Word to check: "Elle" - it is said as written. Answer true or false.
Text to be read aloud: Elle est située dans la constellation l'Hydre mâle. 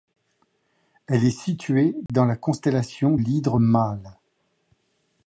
true